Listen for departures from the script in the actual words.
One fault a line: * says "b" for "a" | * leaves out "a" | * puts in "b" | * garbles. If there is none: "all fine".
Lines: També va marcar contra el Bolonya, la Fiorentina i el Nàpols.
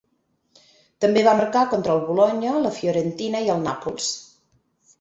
all fine